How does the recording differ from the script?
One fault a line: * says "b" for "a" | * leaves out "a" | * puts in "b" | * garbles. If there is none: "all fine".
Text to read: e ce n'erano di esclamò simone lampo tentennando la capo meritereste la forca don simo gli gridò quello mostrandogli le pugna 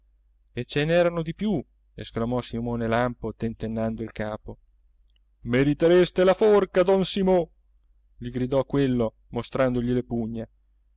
* puts in "più"
* says "il" for "la"